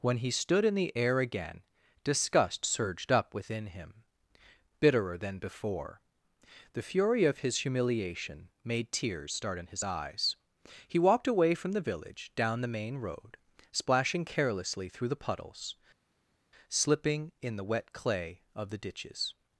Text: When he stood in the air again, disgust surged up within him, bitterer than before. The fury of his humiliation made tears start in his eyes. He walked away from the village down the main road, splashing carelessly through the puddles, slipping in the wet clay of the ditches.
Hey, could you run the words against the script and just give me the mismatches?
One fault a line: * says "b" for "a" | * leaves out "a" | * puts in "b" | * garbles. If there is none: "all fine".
all fine